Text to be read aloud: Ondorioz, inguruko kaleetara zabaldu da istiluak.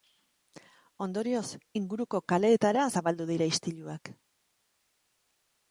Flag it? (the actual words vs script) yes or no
yes